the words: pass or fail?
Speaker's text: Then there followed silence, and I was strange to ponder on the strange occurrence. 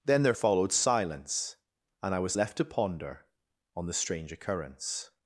fail